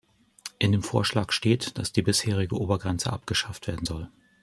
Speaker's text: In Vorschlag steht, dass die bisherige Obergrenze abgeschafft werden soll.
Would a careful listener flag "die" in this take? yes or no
no